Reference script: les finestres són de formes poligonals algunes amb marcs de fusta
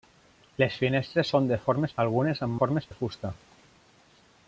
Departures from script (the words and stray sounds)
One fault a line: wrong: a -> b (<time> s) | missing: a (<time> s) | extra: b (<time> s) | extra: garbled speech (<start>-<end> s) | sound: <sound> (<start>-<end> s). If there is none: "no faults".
missing: poligonals (1.9 s)
wrong: marcs -> formes (2.6 s)